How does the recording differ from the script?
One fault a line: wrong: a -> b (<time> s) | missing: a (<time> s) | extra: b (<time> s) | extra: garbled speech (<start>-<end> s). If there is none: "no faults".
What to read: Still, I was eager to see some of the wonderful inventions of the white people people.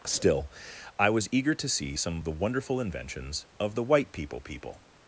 no faults